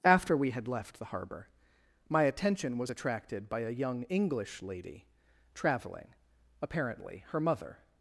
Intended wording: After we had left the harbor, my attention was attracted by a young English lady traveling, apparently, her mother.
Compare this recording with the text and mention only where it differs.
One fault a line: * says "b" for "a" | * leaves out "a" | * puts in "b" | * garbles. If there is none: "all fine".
all fine